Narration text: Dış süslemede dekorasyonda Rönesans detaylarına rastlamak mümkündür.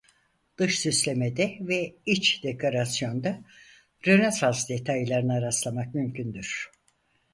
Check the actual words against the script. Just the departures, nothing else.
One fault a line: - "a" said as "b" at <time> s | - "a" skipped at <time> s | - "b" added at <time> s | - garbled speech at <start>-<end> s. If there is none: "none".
- "ve iç" added at 1.6 s